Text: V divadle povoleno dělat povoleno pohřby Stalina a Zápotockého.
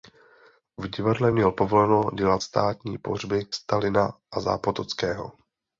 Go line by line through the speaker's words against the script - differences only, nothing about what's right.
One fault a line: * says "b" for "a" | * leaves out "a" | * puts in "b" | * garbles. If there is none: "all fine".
* puts in "měl"
* says "státní" for "povoleno"